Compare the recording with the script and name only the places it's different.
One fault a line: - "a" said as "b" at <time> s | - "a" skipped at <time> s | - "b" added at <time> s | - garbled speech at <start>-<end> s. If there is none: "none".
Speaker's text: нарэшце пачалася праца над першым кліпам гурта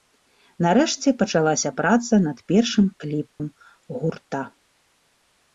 none